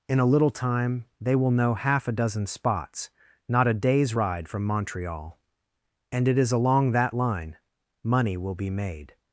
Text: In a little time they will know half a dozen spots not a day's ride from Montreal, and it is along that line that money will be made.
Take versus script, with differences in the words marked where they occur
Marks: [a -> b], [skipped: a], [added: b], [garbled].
In a little time they will know half a dozen spots not a day's ride from Montreal, and it is along that line [skipped: that] money will be made.